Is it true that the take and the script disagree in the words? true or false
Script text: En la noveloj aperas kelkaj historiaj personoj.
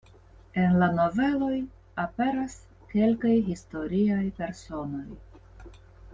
false